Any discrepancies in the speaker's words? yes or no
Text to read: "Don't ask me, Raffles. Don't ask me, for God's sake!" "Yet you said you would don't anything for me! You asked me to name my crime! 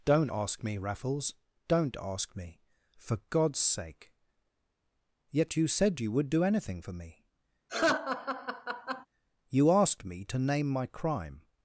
yes